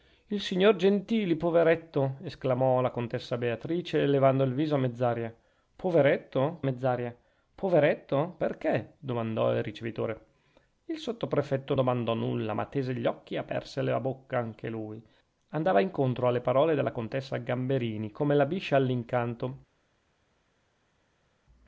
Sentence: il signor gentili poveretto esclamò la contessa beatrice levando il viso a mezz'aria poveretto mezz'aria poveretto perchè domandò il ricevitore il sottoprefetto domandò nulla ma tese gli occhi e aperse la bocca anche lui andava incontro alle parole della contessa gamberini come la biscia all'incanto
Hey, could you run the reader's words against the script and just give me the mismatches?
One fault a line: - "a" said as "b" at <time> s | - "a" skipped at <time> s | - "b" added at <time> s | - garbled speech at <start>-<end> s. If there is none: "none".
none